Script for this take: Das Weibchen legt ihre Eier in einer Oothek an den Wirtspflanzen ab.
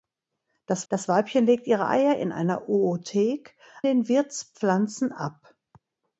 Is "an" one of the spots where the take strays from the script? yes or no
yes